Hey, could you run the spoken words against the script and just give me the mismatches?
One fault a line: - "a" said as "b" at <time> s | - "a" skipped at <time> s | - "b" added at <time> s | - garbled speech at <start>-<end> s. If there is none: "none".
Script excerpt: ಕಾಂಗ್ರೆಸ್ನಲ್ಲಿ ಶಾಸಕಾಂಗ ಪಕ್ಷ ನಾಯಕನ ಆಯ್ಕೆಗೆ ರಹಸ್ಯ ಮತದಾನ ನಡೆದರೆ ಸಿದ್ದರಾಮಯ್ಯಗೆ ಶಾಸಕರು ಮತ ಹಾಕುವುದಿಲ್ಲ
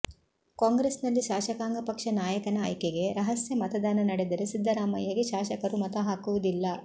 none